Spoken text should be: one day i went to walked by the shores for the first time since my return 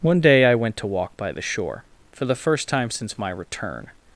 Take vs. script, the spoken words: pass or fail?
fail